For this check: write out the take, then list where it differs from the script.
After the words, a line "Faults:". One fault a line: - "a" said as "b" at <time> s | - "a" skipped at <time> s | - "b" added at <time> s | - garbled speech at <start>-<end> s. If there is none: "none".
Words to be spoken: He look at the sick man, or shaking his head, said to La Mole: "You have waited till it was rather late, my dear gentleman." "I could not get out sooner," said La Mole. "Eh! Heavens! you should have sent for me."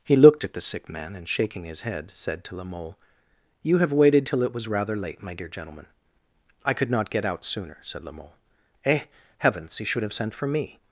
He looked at the sick man, and shaking his head, said to La Mole: "You have waited till it was rather late, my dear gentleman." "I could not get out sooner," said La Mole. "Eh! Heavens! you should have sent for me."
Faults:
- "look" said as "looked" at 0.1 s
- "or" said as "and" at 1.1 s